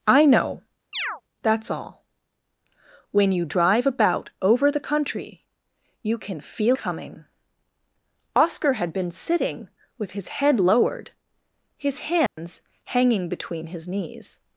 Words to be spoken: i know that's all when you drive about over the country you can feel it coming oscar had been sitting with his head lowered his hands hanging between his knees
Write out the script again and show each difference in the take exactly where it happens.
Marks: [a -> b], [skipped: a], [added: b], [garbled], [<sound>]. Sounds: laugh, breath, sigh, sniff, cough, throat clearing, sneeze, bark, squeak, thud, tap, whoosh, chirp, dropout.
i know [chirp] that's all when you drive about over the country you can feel [skipped: it] coming oscar had been sitting with his head lowered his hands [dropout] hanging between his knees